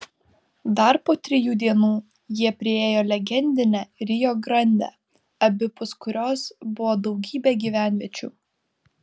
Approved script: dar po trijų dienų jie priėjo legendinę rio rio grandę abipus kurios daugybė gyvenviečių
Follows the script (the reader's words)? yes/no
no